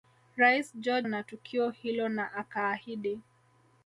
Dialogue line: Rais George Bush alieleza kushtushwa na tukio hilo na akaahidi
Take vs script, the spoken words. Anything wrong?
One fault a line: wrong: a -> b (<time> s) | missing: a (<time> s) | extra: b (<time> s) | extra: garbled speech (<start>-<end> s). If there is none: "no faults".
missing: Bush alieleza kushtushwa (1.1 s)